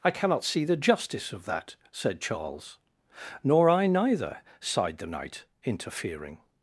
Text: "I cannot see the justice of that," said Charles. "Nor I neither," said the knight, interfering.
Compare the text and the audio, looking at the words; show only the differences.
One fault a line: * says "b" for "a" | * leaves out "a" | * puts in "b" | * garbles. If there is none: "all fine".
* says "sighed" for "said"